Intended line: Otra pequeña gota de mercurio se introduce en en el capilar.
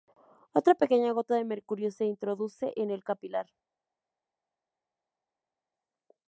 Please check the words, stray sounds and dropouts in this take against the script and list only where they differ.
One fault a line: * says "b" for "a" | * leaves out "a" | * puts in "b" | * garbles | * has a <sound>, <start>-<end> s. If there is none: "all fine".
* leaves out "en"